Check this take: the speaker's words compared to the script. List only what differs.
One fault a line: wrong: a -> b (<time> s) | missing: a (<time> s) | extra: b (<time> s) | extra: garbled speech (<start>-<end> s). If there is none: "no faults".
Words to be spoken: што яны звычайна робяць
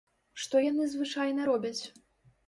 no faults